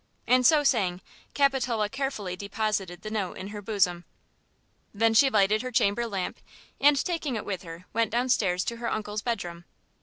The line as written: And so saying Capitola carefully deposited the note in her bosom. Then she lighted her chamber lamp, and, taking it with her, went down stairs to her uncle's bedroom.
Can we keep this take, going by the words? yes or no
yes